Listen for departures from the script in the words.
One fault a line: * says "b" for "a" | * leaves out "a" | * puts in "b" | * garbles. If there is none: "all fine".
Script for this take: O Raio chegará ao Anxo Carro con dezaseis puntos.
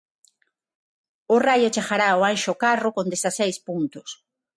all fine